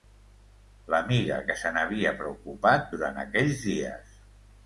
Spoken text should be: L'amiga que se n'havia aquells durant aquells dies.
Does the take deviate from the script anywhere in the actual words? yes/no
yes